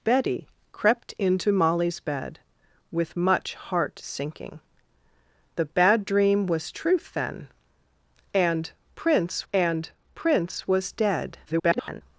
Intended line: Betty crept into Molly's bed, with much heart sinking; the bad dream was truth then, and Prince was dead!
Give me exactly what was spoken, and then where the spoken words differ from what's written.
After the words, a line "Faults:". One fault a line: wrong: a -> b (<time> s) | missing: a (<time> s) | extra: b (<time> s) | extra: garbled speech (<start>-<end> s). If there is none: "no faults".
Betty crept into Molly's bed, with much heart sinking; the bad dream was truth then, and Prince and Prince was dead! [garbled]
Faults:
extra: and Prince (9.5 s)
extra: garbled speech (11.5-12.0 s)